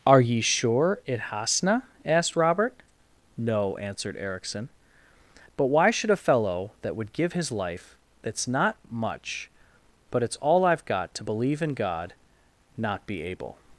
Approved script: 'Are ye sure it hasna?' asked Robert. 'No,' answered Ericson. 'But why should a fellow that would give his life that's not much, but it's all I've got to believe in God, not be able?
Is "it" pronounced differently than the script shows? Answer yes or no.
no